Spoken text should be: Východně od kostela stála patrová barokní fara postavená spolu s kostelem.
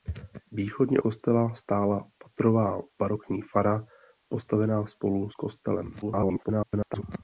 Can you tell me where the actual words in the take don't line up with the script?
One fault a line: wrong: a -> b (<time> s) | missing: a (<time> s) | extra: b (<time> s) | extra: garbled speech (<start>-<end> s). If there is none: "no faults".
missing: od (1.0 s)
extra: garbled speech (6.0-7.0 s)